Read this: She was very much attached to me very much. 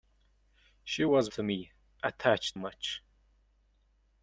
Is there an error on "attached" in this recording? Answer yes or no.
yes